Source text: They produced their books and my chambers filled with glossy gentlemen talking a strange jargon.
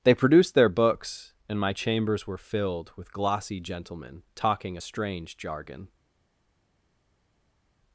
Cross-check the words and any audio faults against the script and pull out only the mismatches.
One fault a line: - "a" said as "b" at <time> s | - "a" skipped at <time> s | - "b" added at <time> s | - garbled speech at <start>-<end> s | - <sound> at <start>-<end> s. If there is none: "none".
- "were" added at 2.2 s